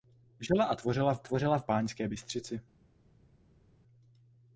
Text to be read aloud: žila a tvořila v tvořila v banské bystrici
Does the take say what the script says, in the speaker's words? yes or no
yes